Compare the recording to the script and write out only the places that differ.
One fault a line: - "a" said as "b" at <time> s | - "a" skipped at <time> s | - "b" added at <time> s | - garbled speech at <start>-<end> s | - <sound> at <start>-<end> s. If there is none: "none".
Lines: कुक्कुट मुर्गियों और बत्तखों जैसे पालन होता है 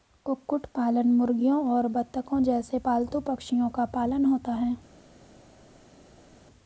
- "पालन" added at 0.8 s
- "पालतू पक्षियों का" added at 2.8 s